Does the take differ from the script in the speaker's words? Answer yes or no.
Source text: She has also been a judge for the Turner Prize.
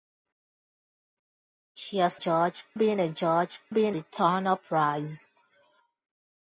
yes